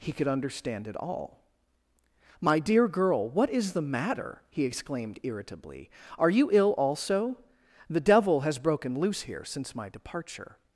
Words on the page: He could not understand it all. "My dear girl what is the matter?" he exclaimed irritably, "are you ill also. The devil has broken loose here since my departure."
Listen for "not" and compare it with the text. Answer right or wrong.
wrong